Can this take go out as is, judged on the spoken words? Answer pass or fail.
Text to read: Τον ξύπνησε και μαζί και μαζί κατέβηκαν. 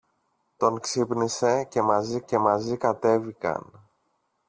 pass